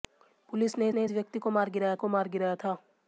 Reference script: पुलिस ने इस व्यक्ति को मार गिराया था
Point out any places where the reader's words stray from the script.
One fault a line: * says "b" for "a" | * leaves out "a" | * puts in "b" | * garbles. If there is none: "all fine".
* puts in "ने"
* puts in "को मार गिराया"